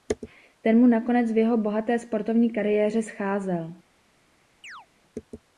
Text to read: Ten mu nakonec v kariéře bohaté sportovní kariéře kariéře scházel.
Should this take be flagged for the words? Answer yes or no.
yes